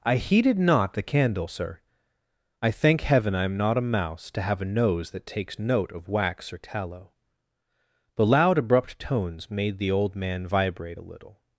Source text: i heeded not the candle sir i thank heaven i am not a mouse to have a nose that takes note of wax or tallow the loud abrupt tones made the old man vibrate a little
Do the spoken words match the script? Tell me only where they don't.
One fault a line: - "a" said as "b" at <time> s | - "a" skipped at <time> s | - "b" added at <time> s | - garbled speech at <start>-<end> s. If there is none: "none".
none